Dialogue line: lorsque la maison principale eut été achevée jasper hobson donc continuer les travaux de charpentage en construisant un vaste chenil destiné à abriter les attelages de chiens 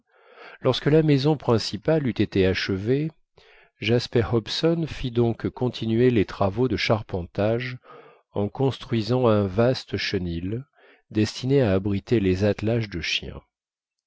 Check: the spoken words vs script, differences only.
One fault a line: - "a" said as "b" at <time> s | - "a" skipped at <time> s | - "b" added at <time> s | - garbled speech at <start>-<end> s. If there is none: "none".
- "fit" added at 4.9 s